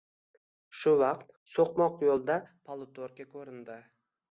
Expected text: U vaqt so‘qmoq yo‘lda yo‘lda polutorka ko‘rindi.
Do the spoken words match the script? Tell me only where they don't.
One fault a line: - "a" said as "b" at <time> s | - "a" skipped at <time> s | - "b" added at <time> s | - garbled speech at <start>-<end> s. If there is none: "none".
- "U" said as "Shu" at 0.8 s
- "yo‘lda" skipped at 2.4 s